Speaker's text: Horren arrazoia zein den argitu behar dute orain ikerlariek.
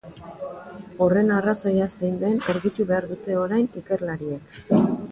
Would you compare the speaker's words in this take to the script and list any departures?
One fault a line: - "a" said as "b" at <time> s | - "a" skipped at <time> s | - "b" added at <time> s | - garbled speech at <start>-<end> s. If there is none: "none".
none